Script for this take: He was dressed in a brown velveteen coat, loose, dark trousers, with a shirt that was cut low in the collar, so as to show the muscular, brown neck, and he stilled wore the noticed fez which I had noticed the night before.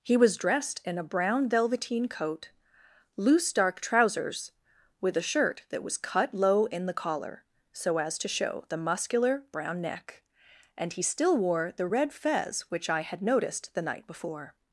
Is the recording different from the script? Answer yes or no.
yes